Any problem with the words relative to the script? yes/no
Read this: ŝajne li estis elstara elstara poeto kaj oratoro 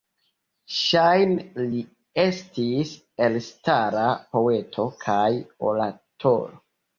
yes